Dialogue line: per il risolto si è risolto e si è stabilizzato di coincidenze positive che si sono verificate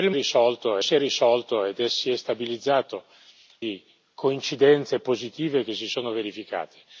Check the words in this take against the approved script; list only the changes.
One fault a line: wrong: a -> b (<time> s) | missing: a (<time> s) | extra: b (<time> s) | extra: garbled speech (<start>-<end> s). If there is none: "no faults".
no faults